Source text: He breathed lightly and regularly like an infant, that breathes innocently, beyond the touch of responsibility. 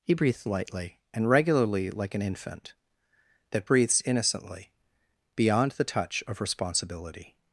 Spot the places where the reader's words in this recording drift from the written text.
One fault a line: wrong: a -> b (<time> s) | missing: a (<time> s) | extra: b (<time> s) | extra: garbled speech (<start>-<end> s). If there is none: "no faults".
no faults